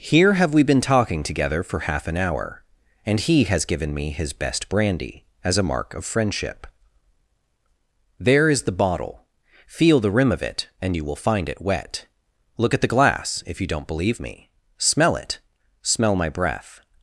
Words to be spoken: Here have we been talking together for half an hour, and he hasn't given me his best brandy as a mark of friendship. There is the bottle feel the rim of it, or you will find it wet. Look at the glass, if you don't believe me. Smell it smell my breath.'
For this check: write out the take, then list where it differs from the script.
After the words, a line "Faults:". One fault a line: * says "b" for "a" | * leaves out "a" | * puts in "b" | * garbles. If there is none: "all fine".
Here have we been talking together for half an hour, and he has given me his best brandy as a mark of friendship. There is the bottle feel the rim of it, and you will find it wet. Look at the glass, if you don't believe me. Smell it smell my breath.'
Faults:
* says "has" for "hasn't"
* says "and" for "or"